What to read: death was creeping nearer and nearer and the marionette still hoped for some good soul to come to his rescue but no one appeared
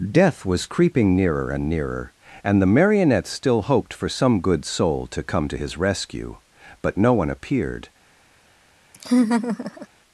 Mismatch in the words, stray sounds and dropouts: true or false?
true